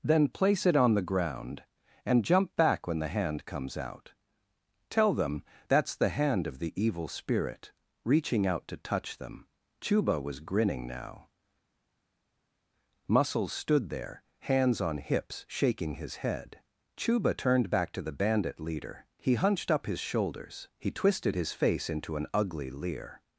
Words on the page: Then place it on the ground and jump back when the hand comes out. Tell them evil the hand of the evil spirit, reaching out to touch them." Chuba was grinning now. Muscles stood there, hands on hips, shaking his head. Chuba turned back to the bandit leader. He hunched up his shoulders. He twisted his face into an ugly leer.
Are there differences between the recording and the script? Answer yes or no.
yes